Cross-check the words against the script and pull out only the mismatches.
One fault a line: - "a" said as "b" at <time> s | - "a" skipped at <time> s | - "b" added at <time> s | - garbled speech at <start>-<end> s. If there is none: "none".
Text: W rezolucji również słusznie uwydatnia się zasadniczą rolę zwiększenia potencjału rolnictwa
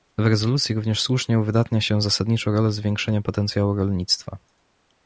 none